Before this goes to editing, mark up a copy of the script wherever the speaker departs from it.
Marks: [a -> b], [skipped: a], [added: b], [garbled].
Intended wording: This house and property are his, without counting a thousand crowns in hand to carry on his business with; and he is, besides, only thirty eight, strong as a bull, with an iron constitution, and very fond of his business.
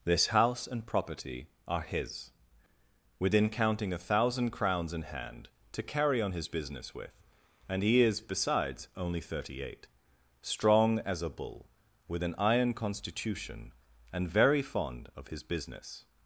This house and property are his, [without -> within] counting a thousand crowns in hand to carry on his business with; and he is, besides, only thirty eight, strong as a bull, with an iron constitution, and very fond of his business.